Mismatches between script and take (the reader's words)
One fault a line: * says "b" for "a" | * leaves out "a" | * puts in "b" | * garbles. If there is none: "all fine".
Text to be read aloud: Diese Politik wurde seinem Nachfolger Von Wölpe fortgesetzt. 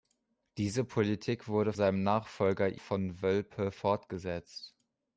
all fine